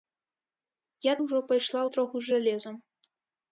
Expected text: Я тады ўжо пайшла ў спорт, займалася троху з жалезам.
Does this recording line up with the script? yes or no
no